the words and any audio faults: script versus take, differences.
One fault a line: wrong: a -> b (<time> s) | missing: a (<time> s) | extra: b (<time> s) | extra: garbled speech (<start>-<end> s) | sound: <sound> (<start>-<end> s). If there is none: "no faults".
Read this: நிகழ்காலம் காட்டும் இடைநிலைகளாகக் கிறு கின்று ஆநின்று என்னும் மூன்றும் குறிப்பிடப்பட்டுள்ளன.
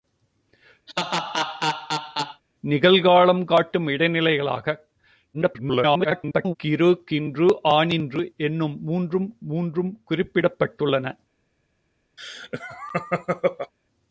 sound: laugh (0.9-2.4 s)
extra: garbled speech (5.3-6.6 s)
extra: மூன்றும் (9.4 s)
sound: laugh (12.2-13.7 s)